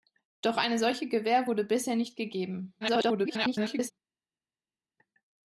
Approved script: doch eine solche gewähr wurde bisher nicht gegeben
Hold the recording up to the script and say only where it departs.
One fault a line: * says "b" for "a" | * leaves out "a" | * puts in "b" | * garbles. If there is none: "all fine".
* garbles